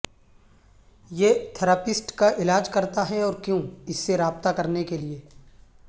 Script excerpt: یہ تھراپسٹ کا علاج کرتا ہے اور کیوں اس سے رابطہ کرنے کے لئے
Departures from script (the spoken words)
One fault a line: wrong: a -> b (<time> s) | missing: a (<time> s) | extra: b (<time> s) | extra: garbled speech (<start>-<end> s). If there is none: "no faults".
no faults